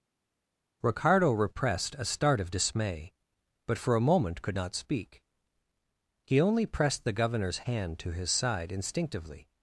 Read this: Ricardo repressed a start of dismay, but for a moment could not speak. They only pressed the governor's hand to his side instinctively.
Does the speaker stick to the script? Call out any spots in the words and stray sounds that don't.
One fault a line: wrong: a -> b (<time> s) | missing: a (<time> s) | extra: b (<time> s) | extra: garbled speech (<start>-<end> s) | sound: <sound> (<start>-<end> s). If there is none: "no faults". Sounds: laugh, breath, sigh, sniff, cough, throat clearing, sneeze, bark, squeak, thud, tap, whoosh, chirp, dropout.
wrong: They -> He (6.2 s)